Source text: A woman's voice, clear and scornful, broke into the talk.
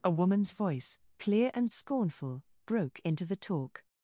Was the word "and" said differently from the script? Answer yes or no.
no